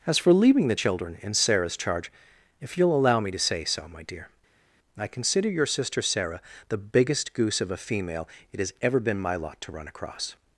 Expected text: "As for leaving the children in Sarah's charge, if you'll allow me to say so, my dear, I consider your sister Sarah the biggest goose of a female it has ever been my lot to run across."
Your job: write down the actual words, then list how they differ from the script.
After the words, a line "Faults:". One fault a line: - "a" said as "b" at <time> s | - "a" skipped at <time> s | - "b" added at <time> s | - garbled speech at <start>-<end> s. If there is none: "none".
"As for leaving the children in Sarah's charge, if you'll allow me to say so, my dear, I consider your sister Sarah the biggest goose of a female it has ever been my lot to run across."
Faults:
none